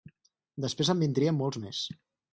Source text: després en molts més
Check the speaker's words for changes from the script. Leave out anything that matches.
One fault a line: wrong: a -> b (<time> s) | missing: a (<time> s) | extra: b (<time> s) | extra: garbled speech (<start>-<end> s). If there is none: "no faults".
extra: vindrien (1.1 s)